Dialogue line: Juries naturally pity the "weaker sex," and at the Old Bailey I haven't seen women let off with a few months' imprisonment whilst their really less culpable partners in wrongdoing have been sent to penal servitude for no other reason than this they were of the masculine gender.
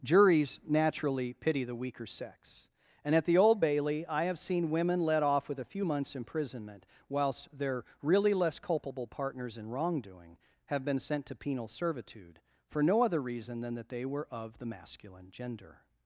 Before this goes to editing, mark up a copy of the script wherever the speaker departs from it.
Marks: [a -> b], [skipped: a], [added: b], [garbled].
Juries naturally pity the "weaker sex," and at the Old Bailey I [haven't -> have] seen women let off with a few months' imprisonment whilst their really less culpable partners in wrongdoing have been sent to penal servitude for no other reason than [this -> that] they were of the masculine gender.